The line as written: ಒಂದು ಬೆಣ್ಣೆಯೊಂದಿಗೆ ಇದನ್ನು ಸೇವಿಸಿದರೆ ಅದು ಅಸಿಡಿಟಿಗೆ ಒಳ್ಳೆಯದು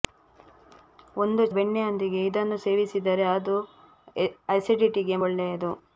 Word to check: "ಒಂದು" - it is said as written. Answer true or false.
true